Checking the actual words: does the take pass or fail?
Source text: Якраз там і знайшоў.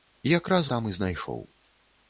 pass